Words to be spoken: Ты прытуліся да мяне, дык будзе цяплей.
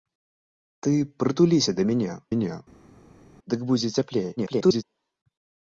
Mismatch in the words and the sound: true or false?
true